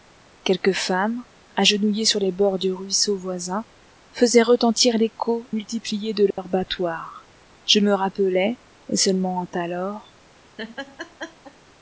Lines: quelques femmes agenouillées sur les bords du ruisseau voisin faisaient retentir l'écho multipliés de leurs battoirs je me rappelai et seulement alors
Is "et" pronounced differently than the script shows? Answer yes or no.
no